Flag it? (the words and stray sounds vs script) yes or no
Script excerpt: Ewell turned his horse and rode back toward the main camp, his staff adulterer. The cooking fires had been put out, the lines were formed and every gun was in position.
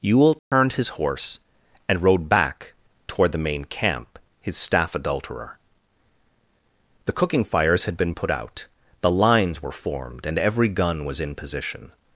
yes